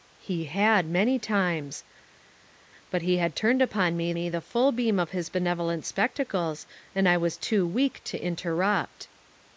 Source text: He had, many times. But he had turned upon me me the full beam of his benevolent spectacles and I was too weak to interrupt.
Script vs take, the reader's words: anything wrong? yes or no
no